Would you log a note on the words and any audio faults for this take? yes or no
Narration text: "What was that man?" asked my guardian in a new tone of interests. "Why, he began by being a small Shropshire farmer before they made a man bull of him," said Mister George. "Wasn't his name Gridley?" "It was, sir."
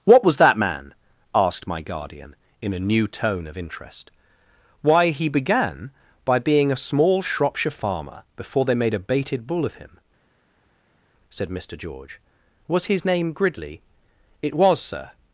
yes